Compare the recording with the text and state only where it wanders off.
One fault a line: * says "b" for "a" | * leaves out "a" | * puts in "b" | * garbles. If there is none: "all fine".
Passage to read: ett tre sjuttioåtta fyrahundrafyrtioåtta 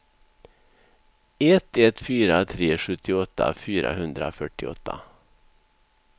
* puts in "ett fyra"